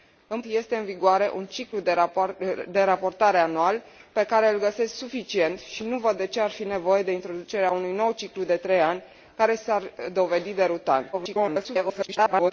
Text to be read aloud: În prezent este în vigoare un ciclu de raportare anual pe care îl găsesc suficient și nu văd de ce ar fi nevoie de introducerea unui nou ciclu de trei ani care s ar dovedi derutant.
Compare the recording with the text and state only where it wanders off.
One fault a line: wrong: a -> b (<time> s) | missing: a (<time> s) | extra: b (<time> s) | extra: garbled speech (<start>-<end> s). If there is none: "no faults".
missing: prezent (0.4 s)
extra: garbled speech (11.1-12.5 s)